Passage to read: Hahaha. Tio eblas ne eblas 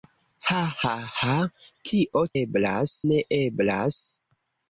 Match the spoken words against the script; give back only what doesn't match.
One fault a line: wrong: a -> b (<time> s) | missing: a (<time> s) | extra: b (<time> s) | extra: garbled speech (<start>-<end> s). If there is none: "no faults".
no faults